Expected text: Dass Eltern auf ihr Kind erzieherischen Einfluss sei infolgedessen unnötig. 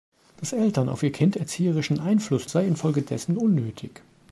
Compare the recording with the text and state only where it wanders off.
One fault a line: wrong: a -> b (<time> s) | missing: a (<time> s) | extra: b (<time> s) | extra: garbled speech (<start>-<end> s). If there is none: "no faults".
no faults